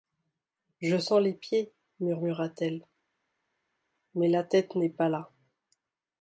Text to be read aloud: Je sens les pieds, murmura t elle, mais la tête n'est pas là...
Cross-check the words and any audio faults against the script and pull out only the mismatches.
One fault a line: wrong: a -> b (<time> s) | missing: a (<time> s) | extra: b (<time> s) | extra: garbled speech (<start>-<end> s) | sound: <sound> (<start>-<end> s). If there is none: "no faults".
no faults